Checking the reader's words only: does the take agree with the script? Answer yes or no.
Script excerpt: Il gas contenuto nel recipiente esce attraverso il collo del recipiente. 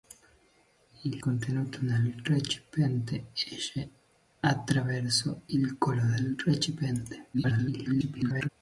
no